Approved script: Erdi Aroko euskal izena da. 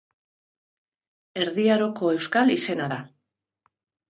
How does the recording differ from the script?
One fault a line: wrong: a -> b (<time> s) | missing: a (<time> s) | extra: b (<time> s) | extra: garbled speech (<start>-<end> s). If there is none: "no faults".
no faults